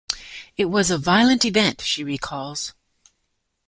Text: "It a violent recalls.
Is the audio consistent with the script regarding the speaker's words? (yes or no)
no